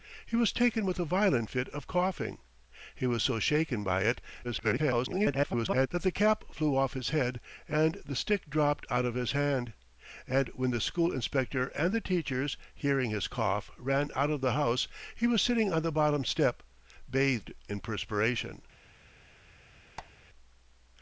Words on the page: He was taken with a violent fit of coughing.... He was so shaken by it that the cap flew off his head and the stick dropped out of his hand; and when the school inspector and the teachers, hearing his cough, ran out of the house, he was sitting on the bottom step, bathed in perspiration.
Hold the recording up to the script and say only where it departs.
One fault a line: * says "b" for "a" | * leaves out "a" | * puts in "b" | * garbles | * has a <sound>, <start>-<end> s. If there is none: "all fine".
* garbles
* has a squeak, 20.0-20.1 s